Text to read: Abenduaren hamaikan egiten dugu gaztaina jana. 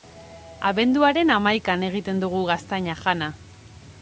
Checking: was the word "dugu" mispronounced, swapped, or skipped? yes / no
no